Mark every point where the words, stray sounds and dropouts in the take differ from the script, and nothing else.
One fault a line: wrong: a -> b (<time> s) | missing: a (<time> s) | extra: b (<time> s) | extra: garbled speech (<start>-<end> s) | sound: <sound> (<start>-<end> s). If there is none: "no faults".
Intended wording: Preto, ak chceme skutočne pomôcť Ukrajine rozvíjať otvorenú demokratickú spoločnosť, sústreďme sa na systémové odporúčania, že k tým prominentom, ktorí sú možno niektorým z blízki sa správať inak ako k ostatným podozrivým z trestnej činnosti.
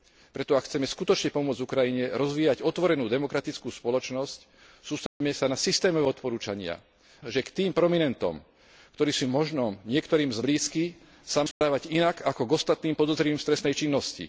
sound: dropout (5.1-5.2 s)
sound: dropout (11.5-11.6 s)